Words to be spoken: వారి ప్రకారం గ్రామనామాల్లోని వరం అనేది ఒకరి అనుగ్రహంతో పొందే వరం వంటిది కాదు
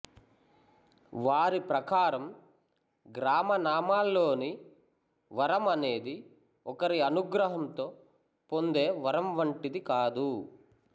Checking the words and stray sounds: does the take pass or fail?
pass